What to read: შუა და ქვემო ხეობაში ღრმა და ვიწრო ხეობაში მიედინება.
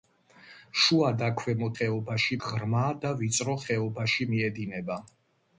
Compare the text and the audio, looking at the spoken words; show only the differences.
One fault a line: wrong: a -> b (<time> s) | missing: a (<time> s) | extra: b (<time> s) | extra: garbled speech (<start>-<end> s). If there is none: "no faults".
no faults